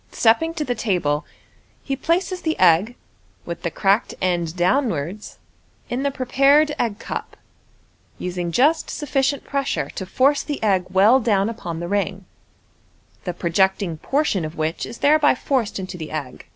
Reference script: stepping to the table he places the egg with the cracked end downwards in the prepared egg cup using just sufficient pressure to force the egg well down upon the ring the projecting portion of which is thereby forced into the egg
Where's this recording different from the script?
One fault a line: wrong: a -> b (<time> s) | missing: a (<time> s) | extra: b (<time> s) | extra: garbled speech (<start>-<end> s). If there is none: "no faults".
no faults